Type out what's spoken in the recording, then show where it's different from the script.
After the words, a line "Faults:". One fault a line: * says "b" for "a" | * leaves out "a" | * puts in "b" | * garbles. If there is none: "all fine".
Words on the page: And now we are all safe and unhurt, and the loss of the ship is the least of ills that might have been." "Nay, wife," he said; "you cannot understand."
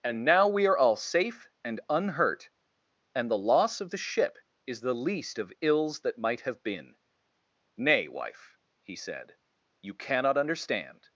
And now we are all safe and unhurt, and the loss of the ship is the least of ills that might have been." "Nay, wife," he said; "you cannot understand."
Faults:
all fine